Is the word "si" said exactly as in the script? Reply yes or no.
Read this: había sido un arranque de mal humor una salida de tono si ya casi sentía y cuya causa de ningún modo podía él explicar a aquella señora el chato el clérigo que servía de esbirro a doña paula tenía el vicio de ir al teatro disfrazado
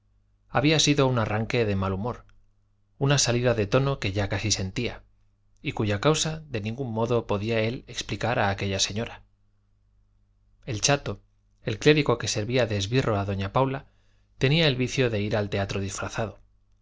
no